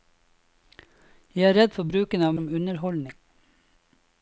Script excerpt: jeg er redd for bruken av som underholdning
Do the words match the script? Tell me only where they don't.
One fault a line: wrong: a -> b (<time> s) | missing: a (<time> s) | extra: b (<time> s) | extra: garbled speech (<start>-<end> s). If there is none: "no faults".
no faults